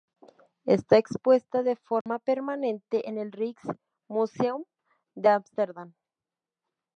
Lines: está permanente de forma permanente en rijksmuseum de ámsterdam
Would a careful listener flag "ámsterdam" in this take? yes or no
no